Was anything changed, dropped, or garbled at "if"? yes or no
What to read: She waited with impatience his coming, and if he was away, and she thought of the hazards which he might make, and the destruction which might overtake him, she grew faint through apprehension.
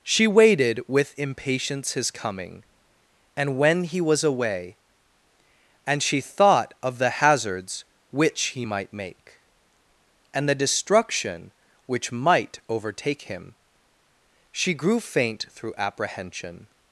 yes